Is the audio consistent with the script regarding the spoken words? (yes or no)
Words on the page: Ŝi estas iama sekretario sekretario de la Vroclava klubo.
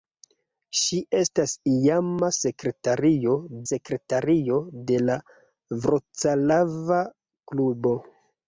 yes